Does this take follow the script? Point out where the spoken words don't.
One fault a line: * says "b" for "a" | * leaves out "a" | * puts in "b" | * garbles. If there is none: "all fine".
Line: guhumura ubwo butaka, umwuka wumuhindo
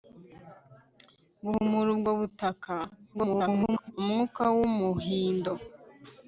* garbles